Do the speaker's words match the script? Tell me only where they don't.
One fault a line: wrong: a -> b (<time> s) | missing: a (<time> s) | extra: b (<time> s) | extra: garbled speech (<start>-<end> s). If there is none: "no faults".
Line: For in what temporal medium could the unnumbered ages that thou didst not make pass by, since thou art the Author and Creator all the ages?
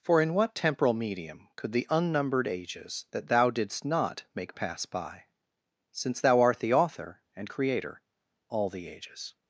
no faults